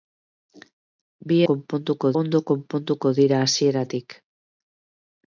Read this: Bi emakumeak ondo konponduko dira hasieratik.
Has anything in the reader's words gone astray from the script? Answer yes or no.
yes